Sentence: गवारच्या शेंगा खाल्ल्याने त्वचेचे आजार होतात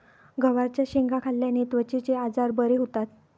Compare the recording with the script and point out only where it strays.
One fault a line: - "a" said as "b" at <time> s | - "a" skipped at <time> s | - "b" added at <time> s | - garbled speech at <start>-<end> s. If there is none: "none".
- "बरे" added at 2.5 s